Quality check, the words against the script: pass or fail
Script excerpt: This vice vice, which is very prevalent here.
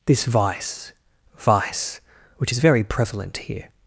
pass